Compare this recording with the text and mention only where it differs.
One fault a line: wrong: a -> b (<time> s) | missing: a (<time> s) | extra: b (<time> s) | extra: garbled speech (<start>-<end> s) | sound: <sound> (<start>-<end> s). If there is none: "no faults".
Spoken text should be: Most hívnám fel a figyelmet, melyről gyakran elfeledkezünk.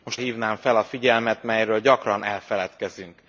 no faults